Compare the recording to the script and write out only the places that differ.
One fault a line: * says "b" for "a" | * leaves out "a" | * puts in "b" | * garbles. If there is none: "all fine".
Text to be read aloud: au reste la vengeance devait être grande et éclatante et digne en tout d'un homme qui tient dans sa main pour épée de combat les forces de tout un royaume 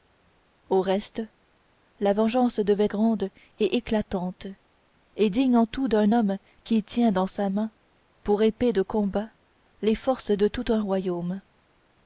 * leaves out "être"